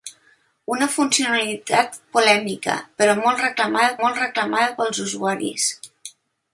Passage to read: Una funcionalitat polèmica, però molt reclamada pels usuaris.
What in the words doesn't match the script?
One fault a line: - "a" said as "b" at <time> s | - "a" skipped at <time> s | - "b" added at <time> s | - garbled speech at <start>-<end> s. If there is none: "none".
- "molt reclamada" added at 4.0 s